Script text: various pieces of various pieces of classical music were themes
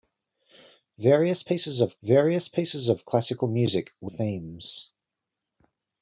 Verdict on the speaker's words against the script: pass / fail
pass